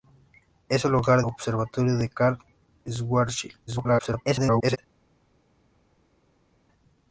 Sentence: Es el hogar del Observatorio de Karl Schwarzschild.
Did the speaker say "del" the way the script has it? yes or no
no